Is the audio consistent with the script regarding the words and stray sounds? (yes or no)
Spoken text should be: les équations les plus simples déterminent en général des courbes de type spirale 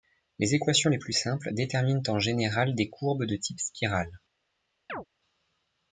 no